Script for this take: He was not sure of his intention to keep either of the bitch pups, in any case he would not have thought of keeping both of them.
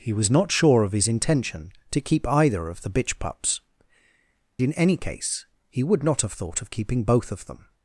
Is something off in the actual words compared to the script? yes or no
no